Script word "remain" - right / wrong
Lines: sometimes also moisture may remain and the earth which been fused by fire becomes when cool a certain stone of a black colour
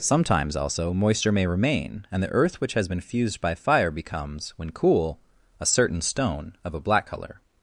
right